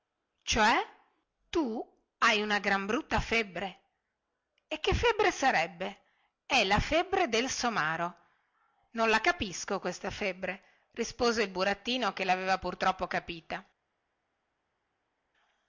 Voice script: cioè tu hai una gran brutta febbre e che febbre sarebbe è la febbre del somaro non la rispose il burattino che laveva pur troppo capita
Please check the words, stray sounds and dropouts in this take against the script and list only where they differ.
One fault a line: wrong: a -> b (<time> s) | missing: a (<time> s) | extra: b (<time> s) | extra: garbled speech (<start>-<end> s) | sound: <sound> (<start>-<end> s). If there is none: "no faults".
extra: capisco questa febbre (9.2 s)